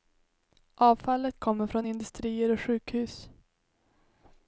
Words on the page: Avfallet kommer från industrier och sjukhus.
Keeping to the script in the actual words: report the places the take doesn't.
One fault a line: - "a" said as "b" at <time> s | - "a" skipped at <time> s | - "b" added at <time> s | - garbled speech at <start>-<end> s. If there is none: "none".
none